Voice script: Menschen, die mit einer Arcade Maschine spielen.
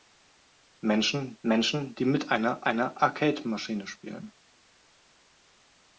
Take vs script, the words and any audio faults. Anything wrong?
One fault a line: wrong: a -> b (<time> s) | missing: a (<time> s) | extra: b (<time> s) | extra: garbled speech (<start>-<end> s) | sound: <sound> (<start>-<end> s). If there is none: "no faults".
extra: menschen (1.4 s)
extra: einer (2.7 s)